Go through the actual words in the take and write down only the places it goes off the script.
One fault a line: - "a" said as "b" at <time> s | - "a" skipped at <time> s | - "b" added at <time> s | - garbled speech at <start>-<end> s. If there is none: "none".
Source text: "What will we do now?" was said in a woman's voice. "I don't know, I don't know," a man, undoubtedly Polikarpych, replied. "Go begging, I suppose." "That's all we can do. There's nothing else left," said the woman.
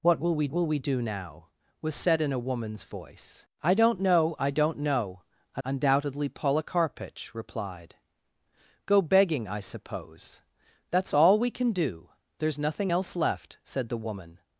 - "will we" added at 0.5 s
- "man" skipped at 5.6 s